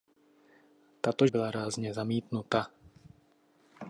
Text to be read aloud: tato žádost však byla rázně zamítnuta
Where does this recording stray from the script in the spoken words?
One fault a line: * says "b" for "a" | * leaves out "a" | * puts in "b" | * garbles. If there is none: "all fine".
* leaves out "žádost však"